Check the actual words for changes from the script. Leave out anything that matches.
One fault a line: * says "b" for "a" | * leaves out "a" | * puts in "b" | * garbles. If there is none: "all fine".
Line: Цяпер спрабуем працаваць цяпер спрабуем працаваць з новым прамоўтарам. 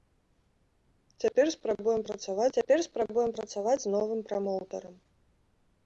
all fine